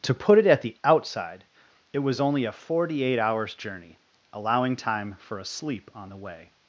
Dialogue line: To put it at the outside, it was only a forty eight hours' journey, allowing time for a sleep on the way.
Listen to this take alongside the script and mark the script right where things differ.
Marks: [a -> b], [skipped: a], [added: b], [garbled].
To put it at the outside, it was only a forty eight hours' journey, allowing time for a sleep on the way.